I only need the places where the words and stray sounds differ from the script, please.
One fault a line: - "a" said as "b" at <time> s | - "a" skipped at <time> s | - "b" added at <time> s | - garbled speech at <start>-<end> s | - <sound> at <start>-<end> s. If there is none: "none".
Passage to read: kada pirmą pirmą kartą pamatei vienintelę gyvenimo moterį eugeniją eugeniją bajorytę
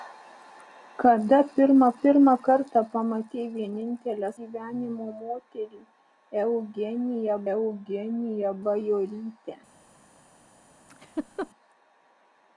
- laugh at 10.9-11.5 s